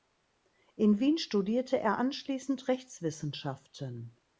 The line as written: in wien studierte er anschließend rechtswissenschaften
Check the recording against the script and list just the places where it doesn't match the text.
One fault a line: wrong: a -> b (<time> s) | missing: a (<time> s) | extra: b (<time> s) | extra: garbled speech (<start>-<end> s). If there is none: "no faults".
no faults